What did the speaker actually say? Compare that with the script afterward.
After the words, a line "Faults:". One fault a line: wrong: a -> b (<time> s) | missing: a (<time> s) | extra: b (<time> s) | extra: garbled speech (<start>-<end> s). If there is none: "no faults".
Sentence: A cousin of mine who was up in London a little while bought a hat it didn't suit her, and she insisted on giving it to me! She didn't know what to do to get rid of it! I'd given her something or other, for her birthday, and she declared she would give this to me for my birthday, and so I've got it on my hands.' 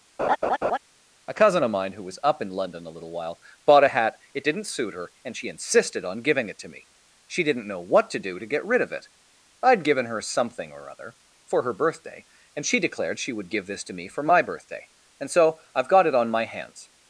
A cousin of mine who was up in London a little while bought a hat it didn't suit her, and she insisted on giving it to me! She didn't know what to do to get rid of it! I'd given her something or other, for her birthday, and she declared she would give this to me for my birthday, and so I've got it on my hands.'
Faults:
no faults